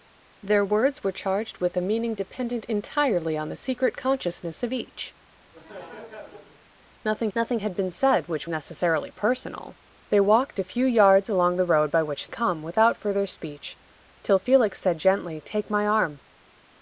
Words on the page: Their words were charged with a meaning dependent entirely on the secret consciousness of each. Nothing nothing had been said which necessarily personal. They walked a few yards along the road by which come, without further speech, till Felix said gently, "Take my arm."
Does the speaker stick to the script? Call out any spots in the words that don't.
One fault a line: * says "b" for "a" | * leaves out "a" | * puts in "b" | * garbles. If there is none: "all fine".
all fine